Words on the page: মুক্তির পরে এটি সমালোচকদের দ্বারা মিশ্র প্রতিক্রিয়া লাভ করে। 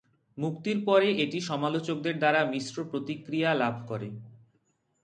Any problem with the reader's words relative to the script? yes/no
no